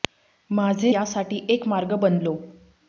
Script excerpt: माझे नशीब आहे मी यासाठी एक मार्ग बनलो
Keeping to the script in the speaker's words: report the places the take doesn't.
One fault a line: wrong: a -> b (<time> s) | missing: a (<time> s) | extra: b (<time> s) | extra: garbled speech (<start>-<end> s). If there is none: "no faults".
missing: नशीब आहे मी (0.9 s)